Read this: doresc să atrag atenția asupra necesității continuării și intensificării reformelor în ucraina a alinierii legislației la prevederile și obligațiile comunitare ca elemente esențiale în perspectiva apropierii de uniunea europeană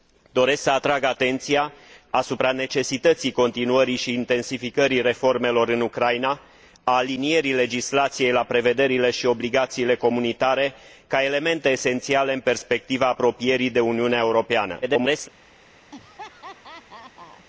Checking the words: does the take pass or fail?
fail